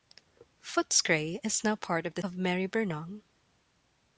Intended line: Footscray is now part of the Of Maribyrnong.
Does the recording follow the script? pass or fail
pass